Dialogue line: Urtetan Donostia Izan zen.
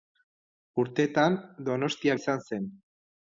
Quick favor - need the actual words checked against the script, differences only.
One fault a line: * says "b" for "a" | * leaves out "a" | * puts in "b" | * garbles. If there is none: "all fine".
all fine